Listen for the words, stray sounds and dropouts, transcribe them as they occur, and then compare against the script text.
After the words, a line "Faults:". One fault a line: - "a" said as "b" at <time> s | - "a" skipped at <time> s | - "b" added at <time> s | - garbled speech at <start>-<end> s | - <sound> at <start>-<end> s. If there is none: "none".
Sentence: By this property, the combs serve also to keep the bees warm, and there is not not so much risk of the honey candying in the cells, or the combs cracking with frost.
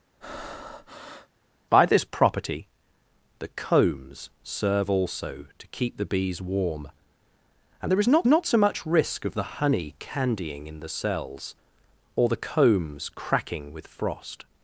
By this property, the combs serve also to keep the bees warm, and there is not not so much risk of the honey candying in the cells, or the combs cracking with frost.
Faults:
- breath at 0.2-1.3 s